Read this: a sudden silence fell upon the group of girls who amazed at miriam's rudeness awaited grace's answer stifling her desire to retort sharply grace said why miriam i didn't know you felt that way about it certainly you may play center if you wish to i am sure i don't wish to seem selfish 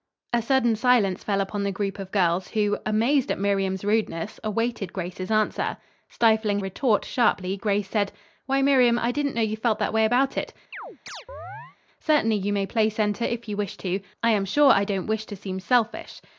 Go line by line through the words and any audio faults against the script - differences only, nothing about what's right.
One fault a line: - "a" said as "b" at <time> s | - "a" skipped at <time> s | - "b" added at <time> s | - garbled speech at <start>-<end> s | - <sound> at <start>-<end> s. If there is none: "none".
- "her desire to" skipped at 6.6 s
- chirp at 10.7-11.8 s